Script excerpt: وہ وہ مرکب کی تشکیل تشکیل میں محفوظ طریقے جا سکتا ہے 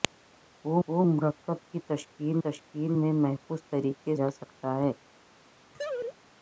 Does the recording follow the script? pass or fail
pass